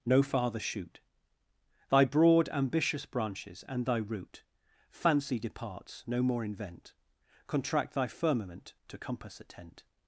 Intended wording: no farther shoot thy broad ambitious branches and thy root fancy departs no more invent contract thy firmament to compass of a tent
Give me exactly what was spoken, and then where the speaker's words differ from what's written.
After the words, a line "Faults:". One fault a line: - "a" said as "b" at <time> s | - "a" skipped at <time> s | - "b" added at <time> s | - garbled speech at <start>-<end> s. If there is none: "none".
no farther shoot thy broad ambitious branches and thy root fancy departs no more invent contract thy firmament to compass a tent
Faults:
- "of" skipped at 9.4 s